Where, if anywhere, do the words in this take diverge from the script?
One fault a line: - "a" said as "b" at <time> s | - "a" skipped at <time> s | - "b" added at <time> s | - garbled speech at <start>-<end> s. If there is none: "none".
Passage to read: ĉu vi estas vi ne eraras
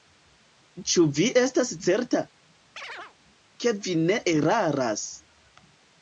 - "certa ke" added at 1.9 s